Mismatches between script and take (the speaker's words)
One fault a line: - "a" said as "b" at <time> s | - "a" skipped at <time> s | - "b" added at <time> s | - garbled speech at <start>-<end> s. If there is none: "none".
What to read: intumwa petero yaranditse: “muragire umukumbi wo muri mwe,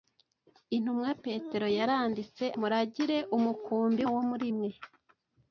none